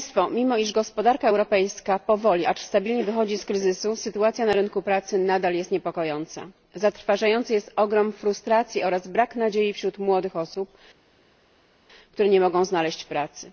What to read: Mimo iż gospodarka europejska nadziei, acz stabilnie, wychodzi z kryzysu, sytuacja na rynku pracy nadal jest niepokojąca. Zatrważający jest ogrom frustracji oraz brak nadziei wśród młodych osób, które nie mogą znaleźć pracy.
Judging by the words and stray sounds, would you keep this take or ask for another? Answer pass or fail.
fail